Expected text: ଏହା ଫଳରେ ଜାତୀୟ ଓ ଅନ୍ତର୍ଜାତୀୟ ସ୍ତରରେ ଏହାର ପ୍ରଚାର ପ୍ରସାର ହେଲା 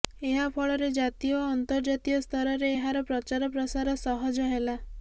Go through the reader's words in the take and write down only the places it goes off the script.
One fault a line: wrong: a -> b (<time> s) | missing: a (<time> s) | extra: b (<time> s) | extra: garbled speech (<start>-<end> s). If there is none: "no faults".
extra: ସହଜ (4.0 s)